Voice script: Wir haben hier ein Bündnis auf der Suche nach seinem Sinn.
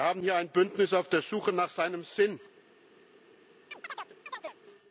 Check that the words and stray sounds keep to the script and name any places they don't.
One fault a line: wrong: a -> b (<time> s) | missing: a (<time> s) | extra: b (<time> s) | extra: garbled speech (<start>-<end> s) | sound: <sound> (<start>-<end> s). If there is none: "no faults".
sound: chirp (3.7-4.6 s)